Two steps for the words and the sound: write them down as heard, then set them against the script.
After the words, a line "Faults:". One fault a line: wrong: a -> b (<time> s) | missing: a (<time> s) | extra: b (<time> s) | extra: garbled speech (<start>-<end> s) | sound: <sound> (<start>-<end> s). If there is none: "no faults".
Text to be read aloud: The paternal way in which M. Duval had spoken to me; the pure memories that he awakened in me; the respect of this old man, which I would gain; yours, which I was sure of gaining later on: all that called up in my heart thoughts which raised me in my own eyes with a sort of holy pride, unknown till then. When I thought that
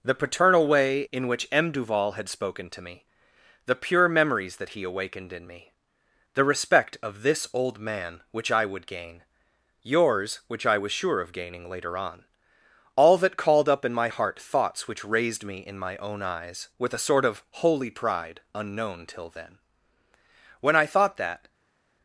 The paternal way in which M. Duval had spoken to me; the pure memories that he awakened in me; the respect of this old man, which I would gain; yours, which I was sure of gaining later on: all that called up in my heart thoughts which raised me in my own eyes with a sort of holy pride, unknown till then. When I thought that
Faults:
no faults